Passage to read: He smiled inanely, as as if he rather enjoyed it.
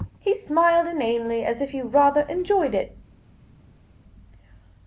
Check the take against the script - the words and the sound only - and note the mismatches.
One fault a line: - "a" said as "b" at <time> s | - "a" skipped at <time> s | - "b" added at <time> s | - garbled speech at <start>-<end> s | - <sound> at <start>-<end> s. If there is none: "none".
- "as" skipped at 1.6 s